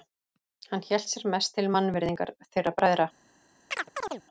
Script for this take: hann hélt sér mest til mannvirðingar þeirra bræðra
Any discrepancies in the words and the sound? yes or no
yes